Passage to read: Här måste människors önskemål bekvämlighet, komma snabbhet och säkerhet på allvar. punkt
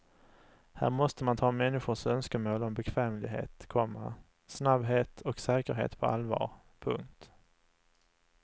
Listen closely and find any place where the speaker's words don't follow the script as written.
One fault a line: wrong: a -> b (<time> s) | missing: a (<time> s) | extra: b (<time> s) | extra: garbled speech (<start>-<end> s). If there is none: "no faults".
extra: man ta (1.2 s)
extra: om (2.6 s)